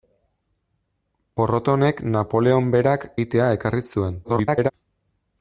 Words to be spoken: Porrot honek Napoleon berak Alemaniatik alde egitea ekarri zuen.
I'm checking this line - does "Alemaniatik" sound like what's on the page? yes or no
no